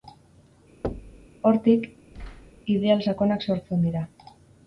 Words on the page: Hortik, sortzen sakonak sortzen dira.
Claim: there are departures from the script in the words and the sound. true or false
true